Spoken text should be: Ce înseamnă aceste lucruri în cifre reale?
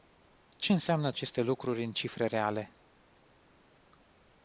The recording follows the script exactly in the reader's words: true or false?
true